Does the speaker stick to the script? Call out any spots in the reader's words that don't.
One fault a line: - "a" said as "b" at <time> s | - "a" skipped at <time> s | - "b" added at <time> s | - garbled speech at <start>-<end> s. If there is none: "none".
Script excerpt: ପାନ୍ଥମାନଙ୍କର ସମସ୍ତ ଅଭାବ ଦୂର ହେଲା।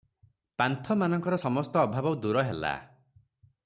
none